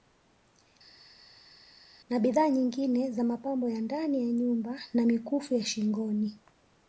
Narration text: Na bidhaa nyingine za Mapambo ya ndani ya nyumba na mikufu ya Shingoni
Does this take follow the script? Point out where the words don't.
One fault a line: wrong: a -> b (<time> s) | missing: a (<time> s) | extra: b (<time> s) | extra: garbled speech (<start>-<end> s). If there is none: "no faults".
no faults